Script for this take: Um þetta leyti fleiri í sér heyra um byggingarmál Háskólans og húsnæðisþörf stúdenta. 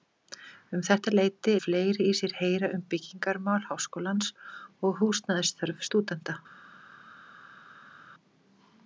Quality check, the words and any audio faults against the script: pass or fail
pass